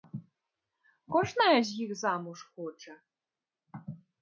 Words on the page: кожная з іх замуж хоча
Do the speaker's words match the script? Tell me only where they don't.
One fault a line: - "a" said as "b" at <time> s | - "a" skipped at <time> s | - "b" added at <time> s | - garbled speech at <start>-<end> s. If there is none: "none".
none